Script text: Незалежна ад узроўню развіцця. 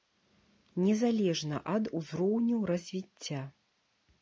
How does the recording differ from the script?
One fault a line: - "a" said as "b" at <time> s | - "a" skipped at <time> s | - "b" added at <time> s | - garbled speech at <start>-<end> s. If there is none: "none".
none